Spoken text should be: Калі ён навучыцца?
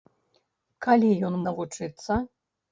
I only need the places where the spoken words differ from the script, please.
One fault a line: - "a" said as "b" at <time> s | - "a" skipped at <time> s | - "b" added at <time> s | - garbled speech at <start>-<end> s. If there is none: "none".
none